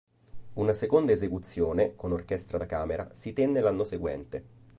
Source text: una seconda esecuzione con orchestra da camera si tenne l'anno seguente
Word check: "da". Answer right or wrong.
right